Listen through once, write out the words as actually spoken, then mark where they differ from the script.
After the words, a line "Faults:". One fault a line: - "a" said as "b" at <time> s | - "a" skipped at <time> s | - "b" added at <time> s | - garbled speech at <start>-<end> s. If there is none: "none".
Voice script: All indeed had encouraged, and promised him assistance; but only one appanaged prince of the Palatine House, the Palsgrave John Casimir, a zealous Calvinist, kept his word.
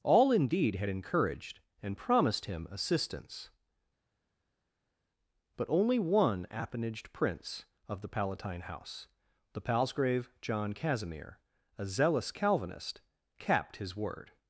All indeed had encouraged, and promised him assistance; but only one appanaged prince of the Palatine House, the Palsgrave John Casimir, a zealous Calvinist, capped his word.
Faults:
- "kept" said as "capped" at 13.4 s